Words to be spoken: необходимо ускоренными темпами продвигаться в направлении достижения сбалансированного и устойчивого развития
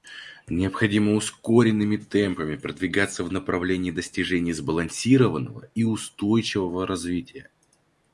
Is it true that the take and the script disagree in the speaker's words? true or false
false